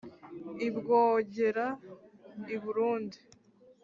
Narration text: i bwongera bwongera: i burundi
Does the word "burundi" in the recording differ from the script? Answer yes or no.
no